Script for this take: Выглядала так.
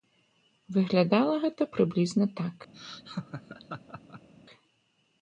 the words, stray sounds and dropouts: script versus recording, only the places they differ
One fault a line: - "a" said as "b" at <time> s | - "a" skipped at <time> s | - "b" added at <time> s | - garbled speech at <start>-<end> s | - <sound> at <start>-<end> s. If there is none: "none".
- "гэта прыблізна" added at 1.4 s
- laugh at 2.7-4.3 s